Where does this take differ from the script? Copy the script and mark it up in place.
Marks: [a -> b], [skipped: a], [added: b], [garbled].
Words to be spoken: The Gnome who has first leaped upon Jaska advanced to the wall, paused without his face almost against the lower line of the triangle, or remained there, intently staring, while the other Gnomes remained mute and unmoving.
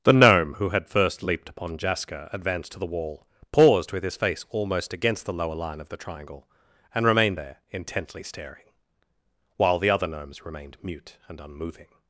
The Gnome who [has -> had] first leaped upon Jaska advanced to the wall, paused [without -> with] his face almost against the lower line of the triangle, [or -> and] remained there, intently staring, while the other Gnomes remained mute and unmoving.